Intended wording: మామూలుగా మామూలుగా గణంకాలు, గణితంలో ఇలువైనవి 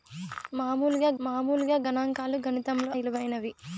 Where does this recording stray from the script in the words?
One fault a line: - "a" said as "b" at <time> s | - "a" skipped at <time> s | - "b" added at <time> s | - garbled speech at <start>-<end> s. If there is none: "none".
none